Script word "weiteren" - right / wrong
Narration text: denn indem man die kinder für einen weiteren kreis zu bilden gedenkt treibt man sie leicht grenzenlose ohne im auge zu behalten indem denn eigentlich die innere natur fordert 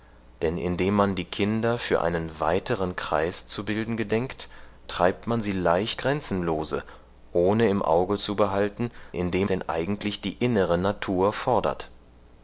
right